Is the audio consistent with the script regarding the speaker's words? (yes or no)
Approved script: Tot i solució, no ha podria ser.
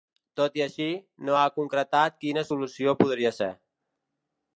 no